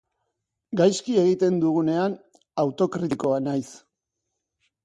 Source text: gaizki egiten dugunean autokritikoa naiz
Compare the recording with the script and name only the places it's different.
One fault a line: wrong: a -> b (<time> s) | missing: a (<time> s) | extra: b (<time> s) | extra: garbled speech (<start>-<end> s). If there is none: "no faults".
no faults